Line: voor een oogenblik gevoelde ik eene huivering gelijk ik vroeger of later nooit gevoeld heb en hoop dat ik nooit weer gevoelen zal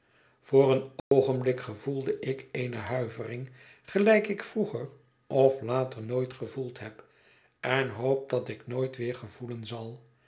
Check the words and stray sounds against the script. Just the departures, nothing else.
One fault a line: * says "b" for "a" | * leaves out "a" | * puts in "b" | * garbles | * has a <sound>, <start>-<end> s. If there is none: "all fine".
* has a dropout, 1.0-1.1 s